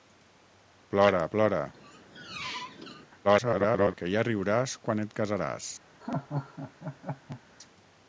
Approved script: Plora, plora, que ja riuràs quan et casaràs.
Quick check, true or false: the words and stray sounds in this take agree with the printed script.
false